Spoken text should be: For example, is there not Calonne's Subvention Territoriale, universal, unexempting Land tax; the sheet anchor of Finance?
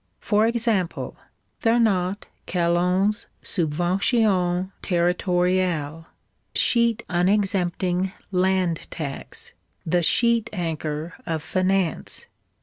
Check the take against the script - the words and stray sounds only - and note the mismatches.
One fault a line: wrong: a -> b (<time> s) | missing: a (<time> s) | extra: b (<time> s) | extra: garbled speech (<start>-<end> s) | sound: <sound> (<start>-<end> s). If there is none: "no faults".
missing: is (1.2 s)
wrong: universal -> sheet (6.5 s)